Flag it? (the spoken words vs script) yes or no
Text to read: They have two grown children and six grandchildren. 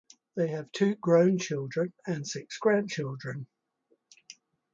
no